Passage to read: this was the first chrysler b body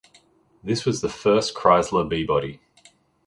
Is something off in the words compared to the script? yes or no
no